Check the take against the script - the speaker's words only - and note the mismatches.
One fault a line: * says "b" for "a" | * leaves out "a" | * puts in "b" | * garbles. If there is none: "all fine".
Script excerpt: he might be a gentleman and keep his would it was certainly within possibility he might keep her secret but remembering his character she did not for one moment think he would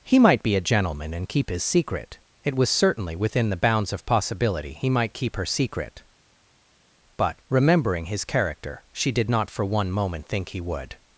* says "secret" for "would"
* puts in "the bounds of"